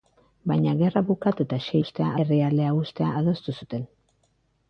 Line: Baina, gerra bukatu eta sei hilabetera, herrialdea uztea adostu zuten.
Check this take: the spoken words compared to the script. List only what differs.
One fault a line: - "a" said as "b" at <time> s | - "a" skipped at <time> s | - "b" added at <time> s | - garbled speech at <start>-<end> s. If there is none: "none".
- "hilabetera" said as "uztea" at 1.8 s